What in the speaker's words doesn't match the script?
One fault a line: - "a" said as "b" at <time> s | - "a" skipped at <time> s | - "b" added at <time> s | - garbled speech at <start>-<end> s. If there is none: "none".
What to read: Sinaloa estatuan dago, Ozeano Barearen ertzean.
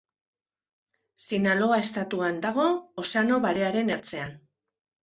none